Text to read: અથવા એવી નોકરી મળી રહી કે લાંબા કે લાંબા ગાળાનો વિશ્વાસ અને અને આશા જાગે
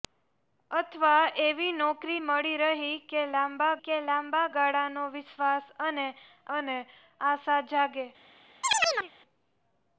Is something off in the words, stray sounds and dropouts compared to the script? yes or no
yes